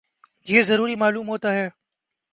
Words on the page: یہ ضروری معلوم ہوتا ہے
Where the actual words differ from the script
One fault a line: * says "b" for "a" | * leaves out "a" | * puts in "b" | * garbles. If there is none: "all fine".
all fine